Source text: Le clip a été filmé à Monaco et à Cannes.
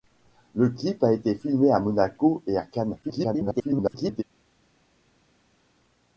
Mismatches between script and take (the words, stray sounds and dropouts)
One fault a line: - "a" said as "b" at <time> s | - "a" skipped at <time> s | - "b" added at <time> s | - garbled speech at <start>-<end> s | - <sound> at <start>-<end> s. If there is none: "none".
- garbled speech at 3.0-4.2 s